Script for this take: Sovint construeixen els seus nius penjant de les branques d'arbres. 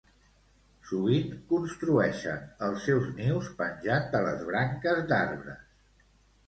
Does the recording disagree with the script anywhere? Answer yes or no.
no